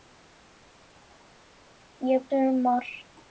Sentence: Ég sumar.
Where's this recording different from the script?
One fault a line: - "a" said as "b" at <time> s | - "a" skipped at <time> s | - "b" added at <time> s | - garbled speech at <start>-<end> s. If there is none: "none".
none